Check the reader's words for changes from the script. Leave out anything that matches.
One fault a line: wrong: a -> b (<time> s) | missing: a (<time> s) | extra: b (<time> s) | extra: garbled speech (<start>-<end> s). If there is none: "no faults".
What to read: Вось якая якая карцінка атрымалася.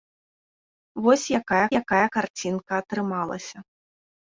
no faults